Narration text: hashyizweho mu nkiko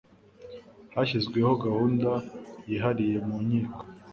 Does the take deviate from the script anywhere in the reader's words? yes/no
yes